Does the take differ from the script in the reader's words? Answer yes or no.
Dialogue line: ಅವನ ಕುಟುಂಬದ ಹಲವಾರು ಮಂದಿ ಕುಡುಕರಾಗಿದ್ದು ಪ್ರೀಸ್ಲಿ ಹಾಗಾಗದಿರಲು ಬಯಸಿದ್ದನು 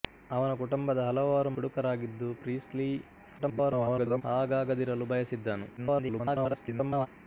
yes